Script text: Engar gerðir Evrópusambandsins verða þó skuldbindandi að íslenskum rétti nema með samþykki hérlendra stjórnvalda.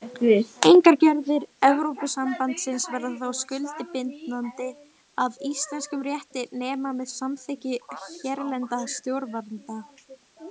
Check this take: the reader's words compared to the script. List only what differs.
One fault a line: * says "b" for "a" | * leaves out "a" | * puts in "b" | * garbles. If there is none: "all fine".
all fine